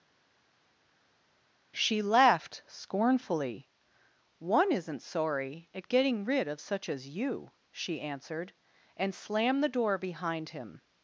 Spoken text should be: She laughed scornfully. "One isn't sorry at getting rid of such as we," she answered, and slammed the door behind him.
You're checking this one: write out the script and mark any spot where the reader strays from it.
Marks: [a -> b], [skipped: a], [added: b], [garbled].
She laughed scornfully. "One isn't sorry at getting rid of such as [we," -> you] she answered, and slammed the door behind him.